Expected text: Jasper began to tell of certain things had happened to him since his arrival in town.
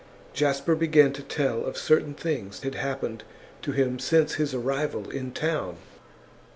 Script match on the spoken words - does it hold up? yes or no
yes